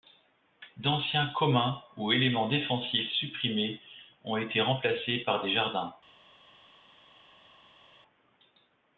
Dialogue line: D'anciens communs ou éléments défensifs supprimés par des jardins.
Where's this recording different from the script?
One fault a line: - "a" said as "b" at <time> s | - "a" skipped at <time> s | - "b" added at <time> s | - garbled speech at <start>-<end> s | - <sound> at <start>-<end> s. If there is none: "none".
- "ont été remplacés" added at 4.2 s